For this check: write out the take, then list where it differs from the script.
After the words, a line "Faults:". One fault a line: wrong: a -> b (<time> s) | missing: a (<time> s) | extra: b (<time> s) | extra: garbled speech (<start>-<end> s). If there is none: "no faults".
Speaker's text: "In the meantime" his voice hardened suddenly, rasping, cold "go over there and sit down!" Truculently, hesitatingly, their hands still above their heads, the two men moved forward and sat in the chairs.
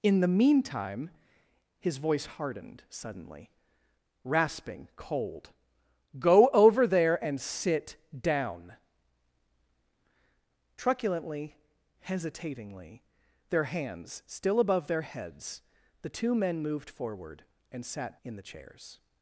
"In the meantime" his voice hardened suddenly, rasping, cold "go over there and sit down!" Truculently, hesitatingly, their hands still above their heads, the two men moved forward and sat in the chairs.
Faults:
no faults